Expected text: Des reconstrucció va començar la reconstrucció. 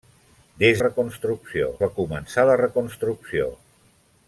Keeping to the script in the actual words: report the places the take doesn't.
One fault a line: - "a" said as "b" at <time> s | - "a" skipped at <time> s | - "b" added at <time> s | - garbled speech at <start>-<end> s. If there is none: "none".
none